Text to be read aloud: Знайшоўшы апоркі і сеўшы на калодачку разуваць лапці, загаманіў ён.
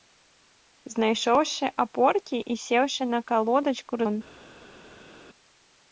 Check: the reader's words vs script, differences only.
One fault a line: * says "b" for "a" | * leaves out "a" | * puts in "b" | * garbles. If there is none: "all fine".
* leaves out "разуваць лапці загаманіў"